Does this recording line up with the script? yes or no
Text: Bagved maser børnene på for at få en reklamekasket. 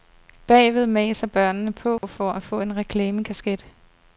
yes